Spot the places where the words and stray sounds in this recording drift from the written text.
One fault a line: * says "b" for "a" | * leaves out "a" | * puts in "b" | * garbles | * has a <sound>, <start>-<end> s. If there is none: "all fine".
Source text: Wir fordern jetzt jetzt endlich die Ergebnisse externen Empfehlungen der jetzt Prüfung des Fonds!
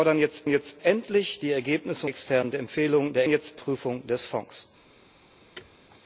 * has a thud, 5.6-5.8 s